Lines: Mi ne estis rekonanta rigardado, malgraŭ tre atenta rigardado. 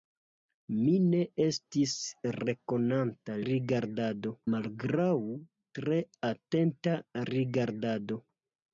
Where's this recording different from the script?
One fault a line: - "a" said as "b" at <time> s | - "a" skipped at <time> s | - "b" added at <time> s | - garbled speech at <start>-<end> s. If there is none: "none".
none